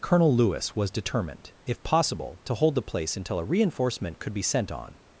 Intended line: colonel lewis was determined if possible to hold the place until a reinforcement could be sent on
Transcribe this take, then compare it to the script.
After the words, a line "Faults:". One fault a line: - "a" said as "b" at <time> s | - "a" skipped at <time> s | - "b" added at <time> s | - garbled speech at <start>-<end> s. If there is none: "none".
colonel lewis was determined if possible to hold the place until a reinforcement could be sent on
Faults:
none